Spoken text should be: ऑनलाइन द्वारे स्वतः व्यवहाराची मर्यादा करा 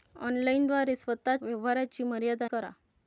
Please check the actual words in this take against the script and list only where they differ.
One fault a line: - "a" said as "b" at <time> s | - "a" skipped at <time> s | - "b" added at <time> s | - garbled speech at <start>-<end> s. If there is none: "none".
none